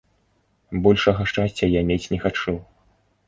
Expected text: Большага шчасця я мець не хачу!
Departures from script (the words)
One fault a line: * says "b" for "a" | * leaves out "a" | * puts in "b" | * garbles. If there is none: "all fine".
all fine